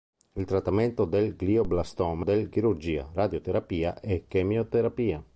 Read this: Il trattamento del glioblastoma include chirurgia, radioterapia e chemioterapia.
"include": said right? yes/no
no